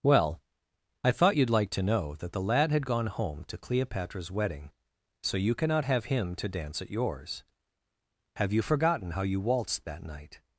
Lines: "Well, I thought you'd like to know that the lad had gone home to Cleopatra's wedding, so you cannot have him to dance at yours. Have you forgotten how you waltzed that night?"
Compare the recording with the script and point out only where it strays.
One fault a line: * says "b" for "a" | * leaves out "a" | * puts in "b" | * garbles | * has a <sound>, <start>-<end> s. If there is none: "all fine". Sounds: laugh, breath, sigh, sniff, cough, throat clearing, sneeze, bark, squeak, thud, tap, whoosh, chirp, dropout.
all fine